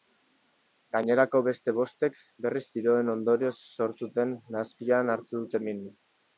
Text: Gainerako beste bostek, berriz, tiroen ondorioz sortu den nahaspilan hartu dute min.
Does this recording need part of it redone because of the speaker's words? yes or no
no